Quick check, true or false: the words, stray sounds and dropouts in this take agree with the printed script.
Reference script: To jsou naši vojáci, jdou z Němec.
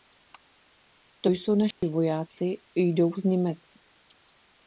false